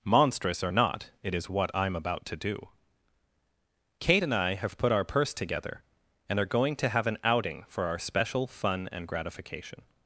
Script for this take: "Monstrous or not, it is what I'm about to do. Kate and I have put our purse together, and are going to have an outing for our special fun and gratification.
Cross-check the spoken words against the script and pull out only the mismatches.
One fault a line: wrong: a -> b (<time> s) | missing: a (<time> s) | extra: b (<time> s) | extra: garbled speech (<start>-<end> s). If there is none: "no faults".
no faults